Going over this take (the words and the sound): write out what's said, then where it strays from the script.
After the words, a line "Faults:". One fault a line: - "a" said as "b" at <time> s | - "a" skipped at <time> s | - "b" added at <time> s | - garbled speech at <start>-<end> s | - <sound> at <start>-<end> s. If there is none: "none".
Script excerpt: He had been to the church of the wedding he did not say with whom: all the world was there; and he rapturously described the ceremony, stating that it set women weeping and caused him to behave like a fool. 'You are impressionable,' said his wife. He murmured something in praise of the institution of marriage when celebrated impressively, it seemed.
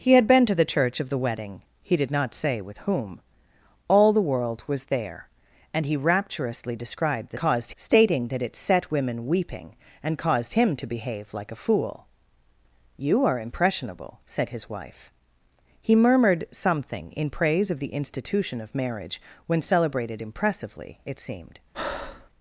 He had been to the church of the wedding he did not say with whom: all the world was there; and he rapturously described the caused, stating that it set women weeping and caused him to behave like a fool. 'You are impressionable,' said his wife. He murmured something in praise of the institution of marriage when celebrated impressively, it seemed.
Faults:
- "ceremony" said as "caused" at 7.4 s
- breath at 21.7-22.3 s